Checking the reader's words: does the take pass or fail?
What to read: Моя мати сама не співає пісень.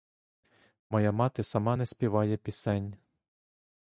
pass